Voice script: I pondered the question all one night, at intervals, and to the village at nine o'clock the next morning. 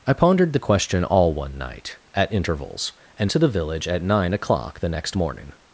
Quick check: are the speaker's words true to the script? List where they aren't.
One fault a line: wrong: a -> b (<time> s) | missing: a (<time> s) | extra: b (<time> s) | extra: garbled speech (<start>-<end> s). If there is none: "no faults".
no faults